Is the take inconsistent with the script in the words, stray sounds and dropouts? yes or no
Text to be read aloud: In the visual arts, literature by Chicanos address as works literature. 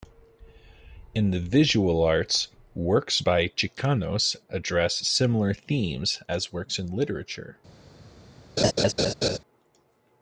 yes